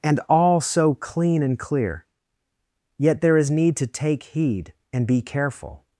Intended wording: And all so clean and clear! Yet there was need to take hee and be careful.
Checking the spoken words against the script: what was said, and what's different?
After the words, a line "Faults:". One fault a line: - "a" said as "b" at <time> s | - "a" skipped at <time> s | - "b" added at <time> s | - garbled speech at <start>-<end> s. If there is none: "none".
And all so clean and clear! Yet there is need to take heed and be careful.
Faults:
- "was" said as "is" at 3.4 s
- "hee" said as "heed" at 4.2 s